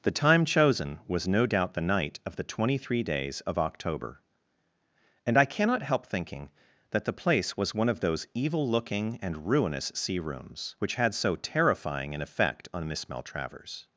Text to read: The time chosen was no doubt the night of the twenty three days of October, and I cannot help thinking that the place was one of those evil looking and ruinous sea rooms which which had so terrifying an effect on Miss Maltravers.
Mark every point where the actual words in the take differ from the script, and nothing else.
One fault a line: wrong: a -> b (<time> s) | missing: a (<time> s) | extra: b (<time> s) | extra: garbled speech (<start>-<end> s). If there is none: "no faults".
missing: which (10.9 s)